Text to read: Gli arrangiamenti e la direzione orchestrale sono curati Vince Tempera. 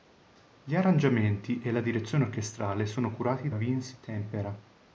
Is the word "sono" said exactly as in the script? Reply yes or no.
yes